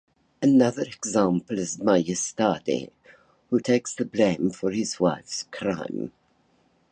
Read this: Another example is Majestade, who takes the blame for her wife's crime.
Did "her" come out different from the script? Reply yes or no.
yes